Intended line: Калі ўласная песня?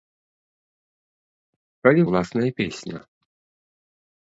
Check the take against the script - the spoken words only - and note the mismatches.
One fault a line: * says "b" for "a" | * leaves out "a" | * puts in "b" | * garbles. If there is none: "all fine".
all fine